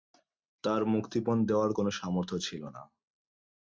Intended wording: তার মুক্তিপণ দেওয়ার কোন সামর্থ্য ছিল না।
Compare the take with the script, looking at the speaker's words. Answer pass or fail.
pass